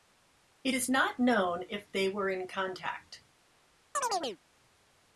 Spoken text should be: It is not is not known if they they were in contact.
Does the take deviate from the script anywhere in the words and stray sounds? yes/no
yes